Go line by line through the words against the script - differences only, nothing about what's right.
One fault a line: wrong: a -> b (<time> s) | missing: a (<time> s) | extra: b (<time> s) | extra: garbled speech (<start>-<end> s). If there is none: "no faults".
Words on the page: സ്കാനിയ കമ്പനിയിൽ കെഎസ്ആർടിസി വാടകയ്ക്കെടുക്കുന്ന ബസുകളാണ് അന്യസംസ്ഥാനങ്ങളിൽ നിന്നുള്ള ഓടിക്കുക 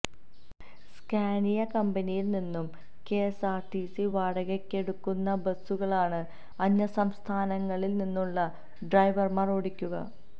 extra: നിന്നും (2.3 s)
extra: ഡ്രൈവർമാർ (8.9 s)